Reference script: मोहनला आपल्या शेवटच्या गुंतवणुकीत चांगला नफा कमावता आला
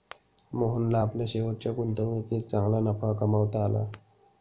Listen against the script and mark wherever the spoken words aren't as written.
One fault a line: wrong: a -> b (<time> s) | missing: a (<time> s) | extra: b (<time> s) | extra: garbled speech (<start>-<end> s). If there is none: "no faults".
no faults